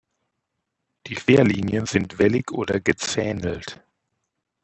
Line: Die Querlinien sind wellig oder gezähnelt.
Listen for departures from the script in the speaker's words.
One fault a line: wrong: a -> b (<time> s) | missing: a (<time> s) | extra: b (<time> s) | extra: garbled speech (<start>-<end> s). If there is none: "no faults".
no faults